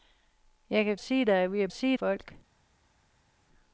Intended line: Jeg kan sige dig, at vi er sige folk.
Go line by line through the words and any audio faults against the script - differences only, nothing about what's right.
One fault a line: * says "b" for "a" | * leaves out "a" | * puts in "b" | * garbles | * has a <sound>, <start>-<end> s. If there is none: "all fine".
all fine